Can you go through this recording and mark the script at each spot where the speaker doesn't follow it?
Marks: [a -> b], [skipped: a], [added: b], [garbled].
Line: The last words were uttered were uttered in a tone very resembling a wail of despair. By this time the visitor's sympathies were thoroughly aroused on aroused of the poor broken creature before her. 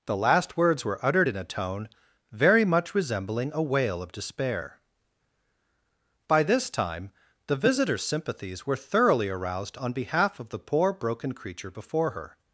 The last words were uttered [skipped: were uttered] in a tone very [added: much] resembling a wail of despair. By this time the visitor's sympathies were thoroughly aroused on [aroused -> behalf] of the poor broken creature before her.